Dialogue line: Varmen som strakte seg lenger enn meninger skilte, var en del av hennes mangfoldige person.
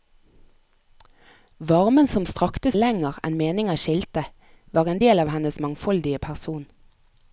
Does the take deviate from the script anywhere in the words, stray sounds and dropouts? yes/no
yes